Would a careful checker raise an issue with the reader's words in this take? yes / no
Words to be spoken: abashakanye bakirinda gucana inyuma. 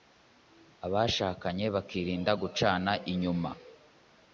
no